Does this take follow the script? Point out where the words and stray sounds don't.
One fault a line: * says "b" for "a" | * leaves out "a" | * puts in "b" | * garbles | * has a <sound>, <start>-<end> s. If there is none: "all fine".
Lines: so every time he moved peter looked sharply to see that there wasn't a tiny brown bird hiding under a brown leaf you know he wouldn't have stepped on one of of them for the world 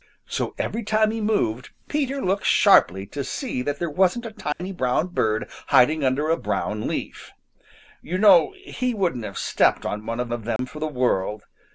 * has a dropout, 4.5-4.6 s
* has a dropout, 10.6-10.6 s